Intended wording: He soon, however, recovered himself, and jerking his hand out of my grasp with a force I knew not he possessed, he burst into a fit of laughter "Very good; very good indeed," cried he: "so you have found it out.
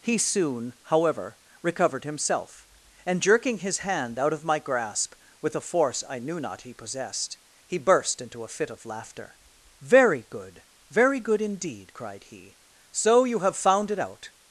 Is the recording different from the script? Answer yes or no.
no